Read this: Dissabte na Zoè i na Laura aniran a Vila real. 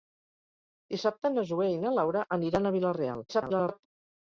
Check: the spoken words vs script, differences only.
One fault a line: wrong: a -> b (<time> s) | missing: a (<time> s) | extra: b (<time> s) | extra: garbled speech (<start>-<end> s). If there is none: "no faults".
extra: garbled speech (3.3-3.9 s)